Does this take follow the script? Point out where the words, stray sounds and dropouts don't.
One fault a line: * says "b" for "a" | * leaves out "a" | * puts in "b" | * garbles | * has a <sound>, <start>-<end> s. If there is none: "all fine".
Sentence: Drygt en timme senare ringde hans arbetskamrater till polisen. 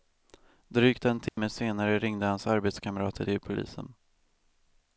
* has a dropout, 1.3-1.4 s